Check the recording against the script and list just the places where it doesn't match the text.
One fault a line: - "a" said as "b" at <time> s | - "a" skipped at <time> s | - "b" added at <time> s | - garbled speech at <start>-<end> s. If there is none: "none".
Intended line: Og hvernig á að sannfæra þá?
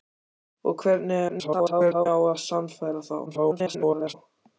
- garbled speech at 1.3-2.1 s
- garbled speech at 3.3-4.1 s